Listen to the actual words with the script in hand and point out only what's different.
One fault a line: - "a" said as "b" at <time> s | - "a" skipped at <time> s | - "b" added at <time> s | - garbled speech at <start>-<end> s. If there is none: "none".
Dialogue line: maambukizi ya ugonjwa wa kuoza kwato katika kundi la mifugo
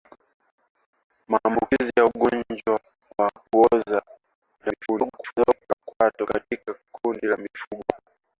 - garbled speech at 4.6-5.8 s